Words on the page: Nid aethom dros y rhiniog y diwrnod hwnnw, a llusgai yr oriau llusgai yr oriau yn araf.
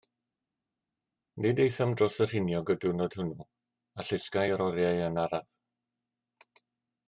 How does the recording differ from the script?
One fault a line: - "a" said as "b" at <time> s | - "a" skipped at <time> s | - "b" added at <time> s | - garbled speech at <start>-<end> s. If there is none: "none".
- "llusgai yr oriau" skipped at 5.0 s